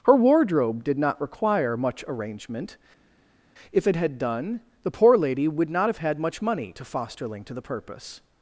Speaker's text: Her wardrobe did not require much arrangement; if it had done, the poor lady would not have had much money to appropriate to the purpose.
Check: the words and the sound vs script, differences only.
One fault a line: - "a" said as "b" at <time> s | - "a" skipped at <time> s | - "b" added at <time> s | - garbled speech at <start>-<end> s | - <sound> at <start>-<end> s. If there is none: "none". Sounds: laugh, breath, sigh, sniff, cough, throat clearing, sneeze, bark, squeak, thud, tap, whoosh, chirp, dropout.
- "appropriate" said as "fosterling" at 6.8 s